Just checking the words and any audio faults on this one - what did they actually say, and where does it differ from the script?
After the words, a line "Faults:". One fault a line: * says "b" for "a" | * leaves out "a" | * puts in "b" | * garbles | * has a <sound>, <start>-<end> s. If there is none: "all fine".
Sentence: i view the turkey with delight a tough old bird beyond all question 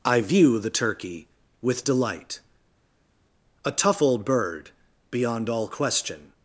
i view the turkey with delight a tough old bird beyond all question
Faults:
all fine